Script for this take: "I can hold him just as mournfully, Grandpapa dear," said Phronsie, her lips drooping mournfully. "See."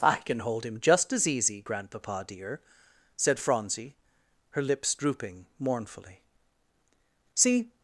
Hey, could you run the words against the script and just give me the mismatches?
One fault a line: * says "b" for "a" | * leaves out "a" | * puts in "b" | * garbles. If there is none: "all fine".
* says "easy" for "mournfully"